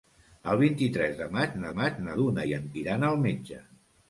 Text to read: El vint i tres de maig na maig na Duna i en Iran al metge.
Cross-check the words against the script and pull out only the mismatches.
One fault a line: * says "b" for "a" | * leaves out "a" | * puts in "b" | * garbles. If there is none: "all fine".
all fine